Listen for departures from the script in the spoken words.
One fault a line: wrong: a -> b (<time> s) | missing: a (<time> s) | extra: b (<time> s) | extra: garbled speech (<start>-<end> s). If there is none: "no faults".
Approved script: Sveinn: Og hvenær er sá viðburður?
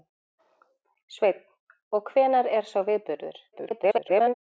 extra: garbled speech (3.5-4.3 s)